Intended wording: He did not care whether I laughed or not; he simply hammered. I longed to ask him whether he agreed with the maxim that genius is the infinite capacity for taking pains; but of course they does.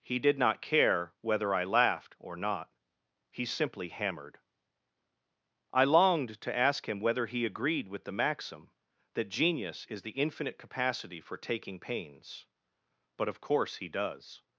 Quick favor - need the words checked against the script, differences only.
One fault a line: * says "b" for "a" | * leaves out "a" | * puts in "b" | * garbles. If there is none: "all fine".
* says "he" for "they"